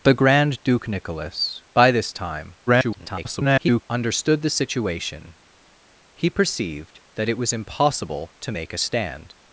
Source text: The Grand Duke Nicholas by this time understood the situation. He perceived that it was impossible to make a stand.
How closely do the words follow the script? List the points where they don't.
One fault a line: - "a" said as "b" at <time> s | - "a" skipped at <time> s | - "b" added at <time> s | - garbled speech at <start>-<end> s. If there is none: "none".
- garbled speech at 2.7-3.8 s